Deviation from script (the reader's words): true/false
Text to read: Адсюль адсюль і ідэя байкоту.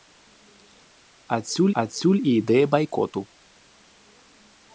false